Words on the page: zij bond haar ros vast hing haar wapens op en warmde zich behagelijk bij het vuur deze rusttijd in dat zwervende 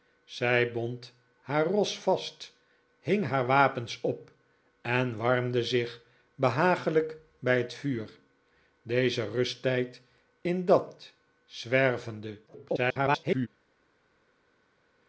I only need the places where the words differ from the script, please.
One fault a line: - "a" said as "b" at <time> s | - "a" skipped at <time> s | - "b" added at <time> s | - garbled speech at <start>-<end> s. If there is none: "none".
- garbled speech at 12.5-13.5 s